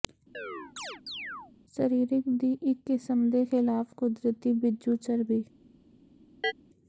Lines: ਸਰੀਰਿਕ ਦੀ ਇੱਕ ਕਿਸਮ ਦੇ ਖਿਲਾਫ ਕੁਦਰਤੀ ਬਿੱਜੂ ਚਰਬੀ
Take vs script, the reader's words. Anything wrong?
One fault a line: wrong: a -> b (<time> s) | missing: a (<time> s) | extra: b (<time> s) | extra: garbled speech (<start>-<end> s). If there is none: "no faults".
no faults